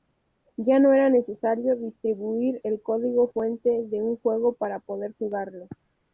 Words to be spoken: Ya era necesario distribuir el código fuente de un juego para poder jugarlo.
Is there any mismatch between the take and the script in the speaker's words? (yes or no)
yes